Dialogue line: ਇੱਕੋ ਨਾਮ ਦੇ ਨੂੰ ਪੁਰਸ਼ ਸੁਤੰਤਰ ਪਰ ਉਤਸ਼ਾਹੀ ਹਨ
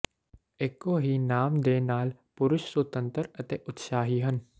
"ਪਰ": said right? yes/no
no